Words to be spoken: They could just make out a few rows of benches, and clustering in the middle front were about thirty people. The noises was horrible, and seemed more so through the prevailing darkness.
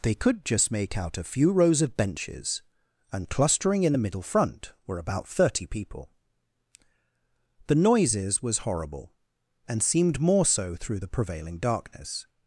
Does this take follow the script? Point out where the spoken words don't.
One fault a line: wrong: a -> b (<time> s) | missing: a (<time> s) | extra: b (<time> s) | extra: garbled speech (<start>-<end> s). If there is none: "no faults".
no faults